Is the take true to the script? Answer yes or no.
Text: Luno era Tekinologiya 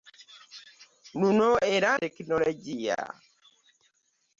yes